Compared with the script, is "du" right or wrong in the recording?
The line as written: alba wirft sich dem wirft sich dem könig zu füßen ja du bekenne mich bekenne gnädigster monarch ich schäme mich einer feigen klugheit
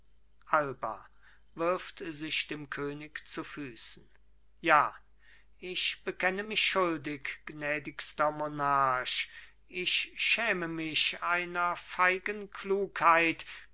wrong